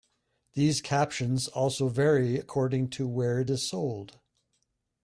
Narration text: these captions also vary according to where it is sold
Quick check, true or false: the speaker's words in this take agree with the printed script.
true